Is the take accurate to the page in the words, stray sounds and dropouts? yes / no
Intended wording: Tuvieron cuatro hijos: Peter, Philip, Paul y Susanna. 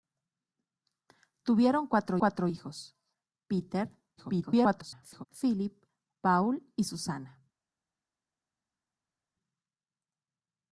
no